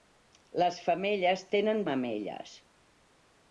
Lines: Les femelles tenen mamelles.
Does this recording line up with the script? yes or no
yes